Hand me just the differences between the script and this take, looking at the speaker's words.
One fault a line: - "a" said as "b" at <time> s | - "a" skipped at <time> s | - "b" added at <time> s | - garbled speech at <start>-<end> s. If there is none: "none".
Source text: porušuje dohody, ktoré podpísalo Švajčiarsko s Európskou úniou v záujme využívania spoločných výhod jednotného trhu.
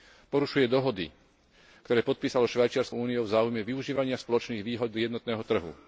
- "s Európskou" skipped at 3.0 s